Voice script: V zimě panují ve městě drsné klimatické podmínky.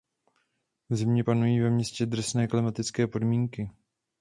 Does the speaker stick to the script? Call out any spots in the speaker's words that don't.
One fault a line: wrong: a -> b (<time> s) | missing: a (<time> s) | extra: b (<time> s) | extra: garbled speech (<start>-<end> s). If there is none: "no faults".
no faults